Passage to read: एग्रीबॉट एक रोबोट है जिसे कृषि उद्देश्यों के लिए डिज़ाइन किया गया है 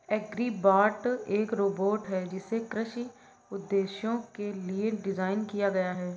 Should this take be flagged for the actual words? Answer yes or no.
no